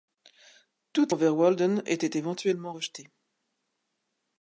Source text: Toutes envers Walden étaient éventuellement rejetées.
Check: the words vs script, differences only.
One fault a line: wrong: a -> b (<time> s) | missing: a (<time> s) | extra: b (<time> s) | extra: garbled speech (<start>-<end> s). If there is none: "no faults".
no faults